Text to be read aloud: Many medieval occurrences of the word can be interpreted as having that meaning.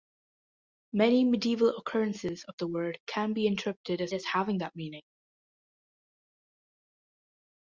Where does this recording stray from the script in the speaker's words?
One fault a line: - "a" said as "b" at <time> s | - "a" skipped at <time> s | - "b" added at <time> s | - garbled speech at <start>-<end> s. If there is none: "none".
- "as" added at 4.1 s